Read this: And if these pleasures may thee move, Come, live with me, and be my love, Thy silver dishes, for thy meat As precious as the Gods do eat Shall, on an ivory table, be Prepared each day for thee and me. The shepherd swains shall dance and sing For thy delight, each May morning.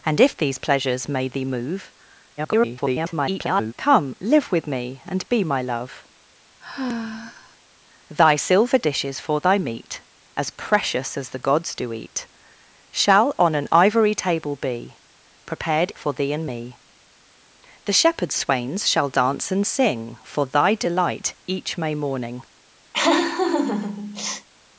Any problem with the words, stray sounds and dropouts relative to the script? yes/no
yes